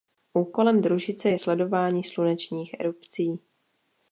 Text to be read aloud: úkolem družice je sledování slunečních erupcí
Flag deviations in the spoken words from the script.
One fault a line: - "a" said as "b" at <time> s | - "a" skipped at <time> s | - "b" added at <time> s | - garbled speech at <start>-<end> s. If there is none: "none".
none